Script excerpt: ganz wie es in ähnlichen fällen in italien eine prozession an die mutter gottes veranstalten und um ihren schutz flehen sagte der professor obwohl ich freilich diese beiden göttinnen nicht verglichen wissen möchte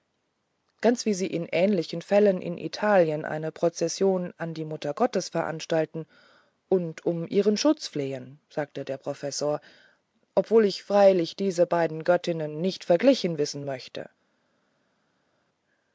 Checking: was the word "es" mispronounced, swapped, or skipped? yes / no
yes